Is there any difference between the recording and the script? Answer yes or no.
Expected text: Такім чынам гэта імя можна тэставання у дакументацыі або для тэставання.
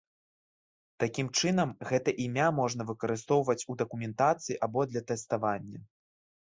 yes